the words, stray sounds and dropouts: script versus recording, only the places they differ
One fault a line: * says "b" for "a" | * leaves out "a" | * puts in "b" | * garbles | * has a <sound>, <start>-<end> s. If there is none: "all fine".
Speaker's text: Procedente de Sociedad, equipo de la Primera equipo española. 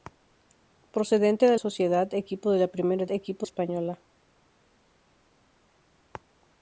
all fine